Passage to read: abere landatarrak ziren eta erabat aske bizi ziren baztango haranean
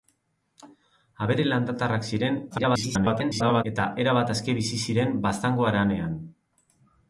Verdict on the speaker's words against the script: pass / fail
fail